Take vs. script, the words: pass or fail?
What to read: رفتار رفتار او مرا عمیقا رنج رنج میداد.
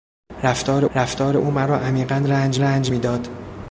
pass